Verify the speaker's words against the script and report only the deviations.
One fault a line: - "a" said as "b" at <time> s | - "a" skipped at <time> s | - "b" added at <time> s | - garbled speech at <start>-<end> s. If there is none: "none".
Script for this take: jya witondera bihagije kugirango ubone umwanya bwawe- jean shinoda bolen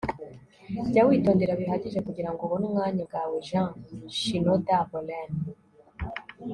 none